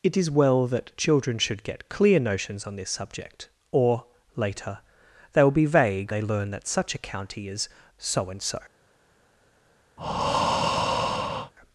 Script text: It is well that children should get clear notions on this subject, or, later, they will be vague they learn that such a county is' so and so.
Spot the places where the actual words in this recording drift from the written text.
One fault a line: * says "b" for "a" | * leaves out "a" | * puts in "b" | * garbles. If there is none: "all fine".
all fine